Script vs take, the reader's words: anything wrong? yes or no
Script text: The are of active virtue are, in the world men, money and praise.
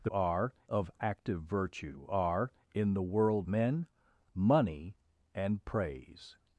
no